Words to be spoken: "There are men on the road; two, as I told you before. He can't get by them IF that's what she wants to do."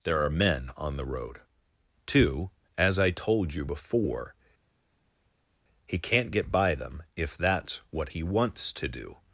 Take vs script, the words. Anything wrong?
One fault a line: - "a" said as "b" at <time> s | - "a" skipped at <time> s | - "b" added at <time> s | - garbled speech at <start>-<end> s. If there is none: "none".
- "she" said as "he" at 8.1 s